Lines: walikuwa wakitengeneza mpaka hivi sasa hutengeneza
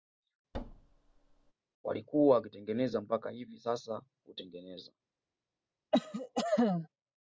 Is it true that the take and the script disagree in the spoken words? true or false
false